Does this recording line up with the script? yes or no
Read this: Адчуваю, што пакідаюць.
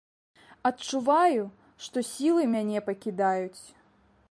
no